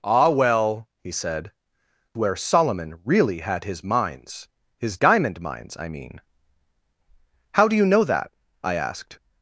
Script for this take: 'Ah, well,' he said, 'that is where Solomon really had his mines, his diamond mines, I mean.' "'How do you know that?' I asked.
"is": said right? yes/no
no